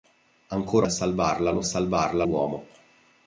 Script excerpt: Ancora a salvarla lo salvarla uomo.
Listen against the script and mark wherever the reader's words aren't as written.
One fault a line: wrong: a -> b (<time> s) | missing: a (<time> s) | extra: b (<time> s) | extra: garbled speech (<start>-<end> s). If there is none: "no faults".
no faults